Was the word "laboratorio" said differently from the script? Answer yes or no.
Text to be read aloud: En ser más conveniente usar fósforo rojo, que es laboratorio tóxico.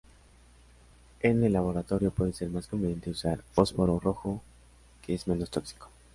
yes